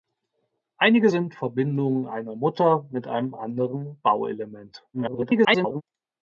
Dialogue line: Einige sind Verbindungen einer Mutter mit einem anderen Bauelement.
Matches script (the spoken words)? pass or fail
fail